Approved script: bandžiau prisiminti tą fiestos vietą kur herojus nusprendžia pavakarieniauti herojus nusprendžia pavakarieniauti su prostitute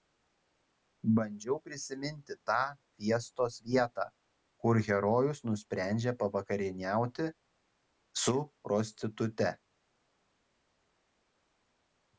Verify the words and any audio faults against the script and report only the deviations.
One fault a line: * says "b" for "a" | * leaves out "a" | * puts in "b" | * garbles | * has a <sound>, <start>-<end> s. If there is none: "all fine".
* leaves out "herojus nusprendžia pavakarieniauti"